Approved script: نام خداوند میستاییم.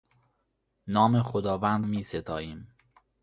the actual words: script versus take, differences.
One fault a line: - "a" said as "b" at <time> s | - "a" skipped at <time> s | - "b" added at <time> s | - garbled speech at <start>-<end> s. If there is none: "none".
none